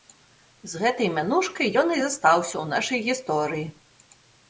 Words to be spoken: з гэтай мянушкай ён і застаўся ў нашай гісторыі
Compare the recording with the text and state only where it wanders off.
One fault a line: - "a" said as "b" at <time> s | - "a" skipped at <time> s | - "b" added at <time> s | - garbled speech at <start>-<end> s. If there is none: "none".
none